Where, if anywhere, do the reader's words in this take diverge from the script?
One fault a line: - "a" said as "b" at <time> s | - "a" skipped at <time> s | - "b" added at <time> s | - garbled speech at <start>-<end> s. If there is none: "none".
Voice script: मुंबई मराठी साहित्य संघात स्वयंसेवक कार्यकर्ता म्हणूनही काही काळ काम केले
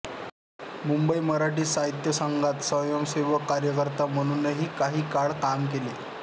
none